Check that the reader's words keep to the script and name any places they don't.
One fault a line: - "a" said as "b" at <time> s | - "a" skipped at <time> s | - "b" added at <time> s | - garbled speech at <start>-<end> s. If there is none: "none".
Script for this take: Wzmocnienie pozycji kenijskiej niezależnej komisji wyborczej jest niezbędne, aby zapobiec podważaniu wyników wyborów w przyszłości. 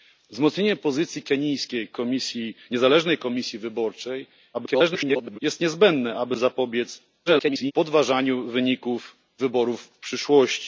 - garbled speech at 4.5-5.4 s
- garbled speech at 7.3-7.7 s